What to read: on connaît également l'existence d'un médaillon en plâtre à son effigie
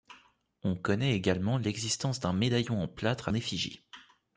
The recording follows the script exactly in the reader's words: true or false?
false